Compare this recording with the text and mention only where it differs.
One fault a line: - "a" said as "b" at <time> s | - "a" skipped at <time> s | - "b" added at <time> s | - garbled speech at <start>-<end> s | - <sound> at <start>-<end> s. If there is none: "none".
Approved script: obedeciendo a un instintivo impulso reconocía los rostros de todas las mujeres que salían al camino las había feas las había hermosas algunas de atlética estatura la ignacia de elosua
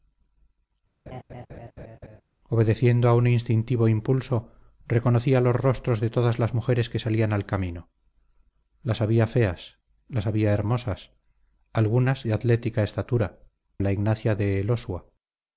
- laugh at 1.1-2.2 s